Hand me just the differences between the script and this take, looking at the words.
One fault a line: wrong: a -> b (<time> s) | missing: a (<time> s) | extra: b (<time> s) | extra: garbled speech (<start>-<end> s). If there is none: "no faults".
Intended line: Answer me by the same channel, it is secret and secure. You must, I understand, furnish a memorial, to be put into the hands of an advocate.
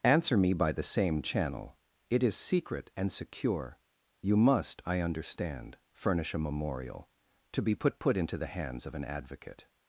extra: put (8.0 s)